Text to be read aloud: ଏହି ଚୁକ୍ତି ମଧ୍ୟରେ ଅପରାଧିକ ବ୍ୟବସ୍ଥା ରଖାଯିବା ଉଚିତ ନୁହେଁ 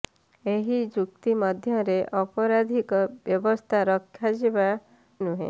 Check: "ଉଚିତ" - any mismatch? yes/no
yes